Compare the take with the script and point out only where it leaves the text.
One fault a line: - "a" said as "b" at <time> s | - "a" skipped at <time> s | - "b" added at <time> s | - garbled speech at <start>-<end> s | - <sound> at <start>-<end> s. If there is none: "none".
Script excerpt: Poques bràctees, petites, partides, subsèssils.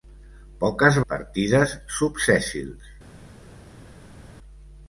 - "bràctees petites" skipped at 1.0 s